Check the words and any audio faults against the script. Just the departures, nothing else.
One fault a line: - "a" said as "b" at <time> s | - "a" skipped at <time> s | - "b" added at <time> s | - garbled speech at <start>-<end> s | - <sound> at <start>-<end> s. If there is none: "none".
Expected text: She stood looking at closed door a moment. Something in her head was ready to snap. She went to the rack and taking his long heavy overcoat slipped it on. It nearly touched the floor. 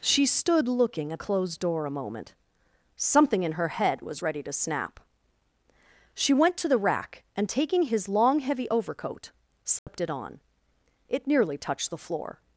- dropout at 9.8-9.9 s